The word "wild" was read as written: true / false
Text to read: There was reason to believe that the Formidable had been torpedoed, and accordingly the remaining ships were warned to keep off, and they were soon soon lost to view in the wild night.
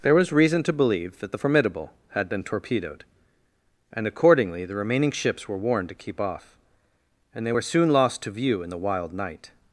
true